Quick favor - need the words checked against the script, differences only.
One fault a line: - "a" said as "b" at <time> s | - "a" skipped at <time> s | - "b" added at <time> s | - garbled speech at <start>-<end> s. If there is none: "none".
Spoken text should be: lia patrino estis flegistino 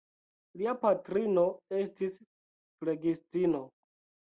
none